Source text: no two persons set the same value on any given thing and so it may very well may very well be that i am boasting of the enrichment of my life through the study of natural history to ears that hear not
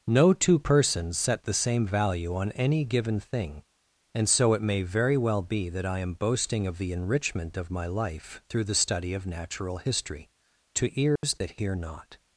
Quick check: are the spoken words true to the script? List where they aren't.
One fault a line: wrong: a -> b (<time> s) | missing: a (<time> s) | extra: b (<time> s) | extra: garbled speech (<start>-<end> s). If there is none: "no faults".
missing: may very well (5.4 s)